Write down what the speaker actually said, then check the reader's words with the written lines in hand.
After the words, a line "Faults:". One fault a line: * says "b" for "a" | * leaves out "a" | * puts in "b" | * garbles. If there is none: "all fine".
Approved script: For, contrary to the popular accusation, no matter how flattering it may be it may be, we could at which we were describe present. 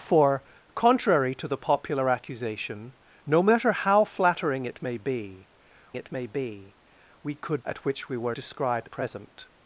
For, contrary to the popular accusation, no matter how flattering it may be it may be, we could at which we were describe present.
Faults:
all fine